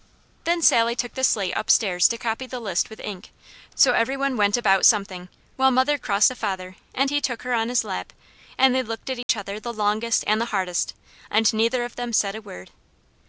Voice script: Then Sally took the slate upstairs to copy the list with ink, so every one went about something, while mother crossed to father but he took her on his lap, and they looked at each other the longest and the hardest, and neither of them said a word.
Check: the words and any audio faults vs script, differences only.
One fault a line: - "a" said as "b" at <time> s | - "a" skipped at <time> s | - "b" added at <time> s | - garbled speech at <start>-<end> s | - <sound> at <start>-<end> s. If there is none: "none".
- "but" said as "and" at 6.9 s
- dropout at 9.2-9.3 s